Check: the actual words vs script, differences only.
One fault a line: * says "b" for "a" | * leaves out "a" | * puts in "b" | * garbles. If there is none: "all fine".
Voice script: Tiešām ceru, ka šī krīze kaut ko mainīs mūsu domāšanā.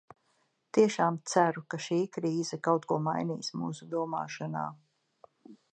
all fine